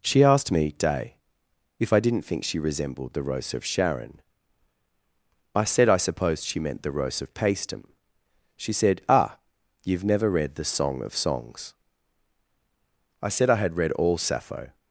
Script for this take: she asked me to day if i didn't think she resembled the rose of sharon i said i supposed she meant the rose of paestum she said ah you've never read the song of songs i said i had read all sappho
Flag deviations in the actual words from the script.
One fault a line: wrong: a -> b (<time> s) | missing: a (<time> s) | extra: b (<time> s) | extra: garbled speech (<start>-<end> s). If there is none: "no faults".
missing: to (0.7 s)